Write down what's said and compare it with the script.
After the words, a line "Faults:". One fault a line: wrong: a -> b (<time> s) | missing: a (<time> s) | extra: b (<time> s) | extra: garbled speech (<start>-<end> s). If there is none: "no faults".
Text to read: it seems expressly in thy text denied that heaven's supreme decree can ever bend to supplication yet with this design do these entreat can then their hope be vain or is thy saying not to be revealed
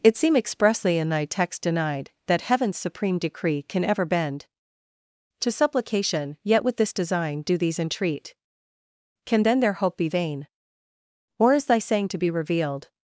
it seem expressly in thy text denied that heaven's supreme decree can ever bend to supplication yet with this design do these entreat can then their hope be vain or is thy saying to be revealed
Faults:
wrong: seems -> seem (0.2 s)
missing: not (12.1 s)